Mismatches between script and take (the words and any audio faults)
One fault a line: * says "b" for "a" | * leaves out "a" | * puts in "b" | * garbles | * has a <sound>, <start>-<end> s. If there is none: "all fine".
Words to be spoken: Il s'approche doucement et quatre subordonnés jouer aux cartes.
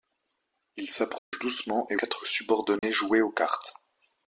* has a dropout, 1.2-1.3 s
* has a dropout, 2.8-2.8 s